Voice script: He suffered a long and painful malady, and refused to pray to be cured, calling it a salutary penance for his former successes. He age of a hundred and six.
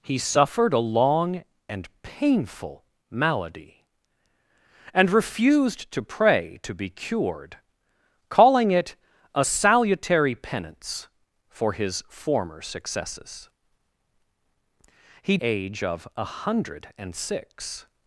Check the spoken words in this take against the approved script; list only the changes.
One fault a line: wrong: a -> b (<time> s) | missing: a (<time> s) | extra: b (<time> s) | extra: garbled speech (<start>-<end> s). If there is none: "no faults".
no faults